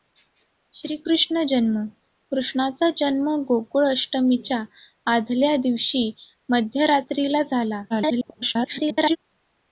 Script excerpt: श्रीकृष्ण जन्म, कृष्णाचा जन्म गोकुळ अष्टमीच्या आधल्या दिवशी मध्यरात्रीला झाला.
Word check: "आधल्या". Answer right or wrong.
right